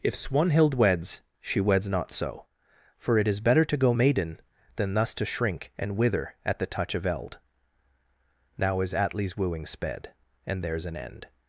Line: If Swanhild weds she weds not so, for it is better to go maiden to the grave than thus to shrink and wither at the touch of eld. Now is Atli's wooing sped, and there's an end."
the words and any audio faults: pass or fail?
fail